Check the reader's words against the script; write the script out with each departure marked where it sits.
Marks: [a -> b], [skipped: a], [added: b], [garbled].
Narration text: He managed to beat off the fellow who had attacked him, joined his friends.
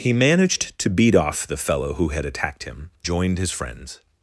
He managed to beat off the fellow who had attacked him, joined his friends.